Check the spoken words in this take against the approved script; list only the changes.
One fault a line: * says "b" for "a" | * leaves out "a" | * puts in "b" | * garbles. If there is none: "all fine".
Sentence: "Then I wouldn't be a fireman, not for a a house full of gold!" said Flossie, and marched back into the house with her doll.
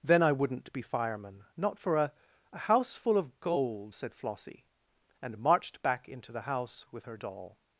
* leaves out "a"